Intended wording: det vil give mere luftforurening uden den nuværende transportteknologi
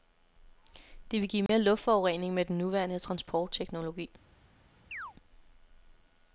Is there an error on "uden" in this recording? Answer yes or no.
yes